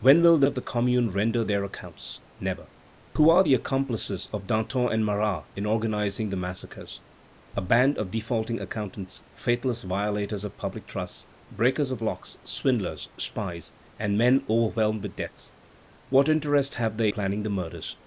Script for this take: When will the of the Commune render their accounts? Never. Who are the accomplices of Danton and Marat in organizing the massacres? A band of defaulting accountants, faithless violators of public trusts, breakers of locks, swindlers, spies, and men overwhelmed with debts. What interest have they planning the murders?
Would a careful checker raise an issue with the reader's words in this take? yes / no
no